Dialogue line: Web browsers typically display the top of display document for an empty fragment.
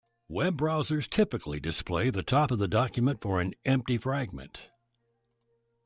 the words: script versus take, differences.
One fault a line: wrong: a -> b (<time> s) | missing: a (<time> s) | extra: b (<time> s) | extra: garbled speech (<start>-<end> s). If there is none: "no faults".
wrong: display -> the (2.6 s)